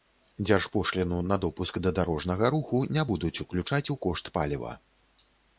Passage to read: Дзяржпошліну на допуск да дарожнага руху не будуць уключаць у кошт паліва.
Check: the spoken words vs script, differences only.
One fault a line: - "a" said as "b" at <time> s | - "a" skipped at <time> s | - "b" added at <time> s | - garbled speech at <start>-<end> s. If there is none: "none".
none